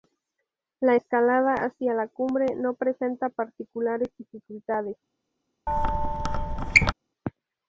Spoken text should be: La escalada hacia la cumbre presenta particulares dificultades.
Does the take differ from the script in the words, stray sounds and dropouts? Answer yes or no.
yes